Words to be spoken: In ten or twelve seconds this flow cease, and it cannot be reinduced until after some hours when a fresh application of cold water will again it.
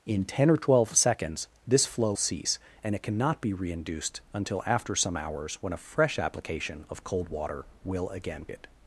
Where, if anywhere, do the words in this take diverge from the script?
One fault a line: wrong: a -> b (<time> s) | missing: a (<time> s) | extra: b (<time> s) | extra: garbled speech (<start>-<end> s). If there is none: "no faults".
no faults